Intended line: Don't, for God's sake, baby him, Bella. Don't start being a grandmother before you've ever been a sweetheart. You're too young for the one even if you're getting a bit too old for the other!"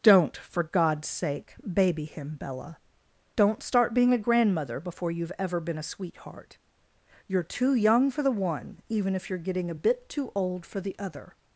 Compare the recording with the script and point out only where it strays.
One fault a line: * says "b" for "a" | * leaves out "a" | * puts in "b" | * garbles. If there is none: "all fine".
all fine